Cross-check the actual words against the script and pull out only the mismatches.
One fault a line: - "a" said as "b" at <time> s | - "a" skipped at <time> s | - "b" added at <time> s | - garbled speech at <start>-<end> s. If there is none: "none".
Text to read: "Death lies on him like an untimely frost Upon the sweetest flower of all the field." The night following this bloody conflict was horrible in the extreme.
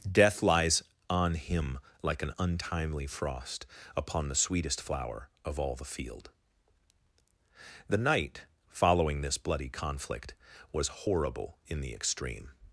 none